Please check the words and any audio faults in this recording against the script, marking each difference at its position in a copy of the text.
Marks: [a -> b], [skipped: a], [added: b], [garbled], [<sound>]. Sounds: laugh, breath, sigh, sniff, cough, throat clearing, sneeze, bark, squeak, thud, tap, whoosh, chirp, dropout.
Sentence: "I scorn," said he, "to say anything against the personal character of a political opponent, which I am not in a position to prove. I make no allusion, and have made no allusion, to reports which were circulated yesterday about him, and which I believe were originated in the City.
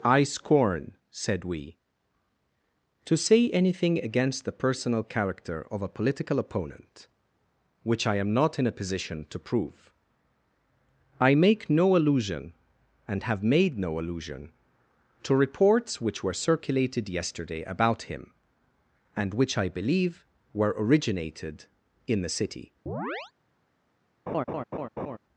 "I scorn," said [he, -> we] "to say anything against the personal character of a political opponent, which I am not in a position to prove. I make no allusion, and have made no allusion, to reports which were circulated yesterday about him, and which I believe were originated in the City. [chirp] [laugh]